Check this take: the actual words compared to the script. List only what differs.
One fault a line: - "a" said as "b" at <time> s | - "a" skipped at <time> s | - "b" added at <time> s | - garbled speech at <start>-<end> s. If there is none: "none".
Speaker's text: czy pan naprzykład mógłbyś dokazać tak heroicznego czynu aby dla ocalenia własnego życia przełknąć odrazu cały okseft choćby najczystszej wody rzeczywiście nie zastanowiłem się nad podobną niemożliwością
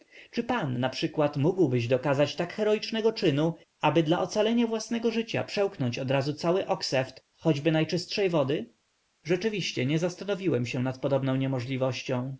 none